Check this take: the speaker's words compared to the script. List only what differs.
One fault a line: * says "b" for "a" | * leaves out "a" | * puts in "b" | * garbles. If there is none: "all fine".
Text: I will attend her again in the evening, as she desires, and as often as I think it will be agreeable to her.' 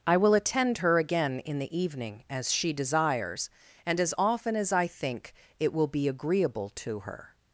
all fine